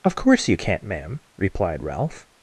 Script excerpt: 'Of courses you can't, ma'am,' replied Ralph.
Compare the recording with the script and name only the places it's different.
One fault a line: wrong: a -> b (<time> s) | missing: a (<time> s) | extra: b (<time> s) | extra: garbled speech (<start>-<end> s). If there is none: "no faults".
wrong: courses -> course (0.2 s)